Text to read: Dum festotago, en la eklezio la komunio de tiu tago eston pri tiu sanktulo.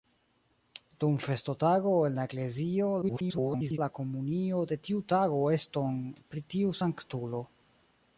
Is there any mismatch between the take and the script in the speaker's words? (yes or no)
yes